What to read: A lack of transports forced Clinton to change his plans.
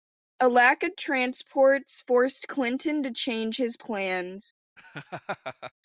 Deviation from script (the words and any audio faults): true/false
true